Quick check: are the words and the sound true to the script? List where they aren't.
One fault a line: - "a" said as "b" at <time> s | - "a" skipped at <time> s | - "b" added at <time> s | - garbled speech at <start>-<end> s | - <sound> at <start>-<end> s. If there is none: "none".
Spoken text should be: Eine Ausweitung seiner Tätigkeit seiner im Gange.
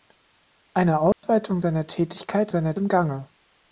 - dropout at 1.1-1.2 s